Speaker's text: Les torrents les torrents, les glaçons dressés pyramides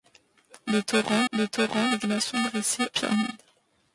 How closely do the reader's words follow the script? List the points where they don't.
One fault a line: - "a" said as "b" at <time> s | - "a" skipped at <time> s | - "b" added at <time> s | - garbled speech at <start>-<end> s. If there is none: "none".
none